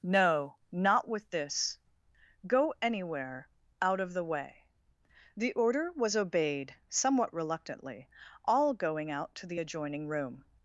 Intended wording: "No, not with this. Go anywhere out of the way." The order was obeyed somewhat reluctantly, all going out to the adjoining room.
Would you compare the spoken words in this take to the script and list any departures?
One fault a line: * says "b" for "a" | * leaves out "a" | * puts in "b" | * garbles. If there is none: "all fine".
all fine